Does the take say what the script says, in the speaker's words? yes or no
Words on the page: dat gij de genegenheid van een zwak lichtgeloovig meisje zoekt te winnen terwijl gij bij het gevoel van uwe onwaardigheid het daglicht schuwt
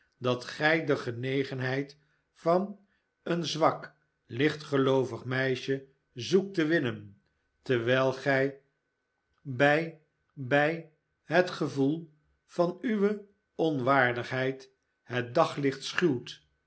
no